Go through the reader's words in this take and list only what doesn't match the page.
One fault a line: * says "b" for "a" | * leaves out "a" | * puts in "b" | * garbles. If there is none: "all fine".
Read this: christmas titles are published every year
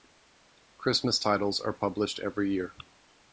all fine